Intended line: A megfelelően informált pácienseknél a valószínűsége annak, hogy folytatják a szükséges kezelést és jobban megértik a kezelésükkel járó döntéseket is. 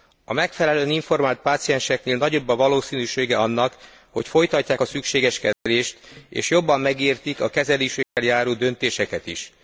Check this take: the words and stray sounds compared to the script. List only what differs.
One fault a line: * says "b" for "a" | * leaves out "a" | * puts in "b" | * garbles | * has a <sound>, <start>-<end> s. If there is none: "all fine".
* puts in "nagyobb"
* has a dropout, 5.5-5.7 s
* has a dropout, 8.0-8.2 s